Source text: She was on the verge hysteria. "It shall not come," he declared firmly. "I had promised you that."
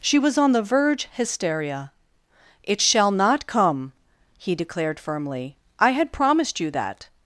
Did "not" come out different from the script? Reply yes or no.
no